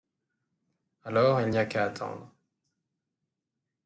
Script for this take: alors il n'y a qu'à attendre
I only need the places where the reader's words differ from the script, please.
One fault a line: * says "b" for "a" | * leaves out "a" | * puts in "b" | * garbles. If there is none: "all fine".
all fine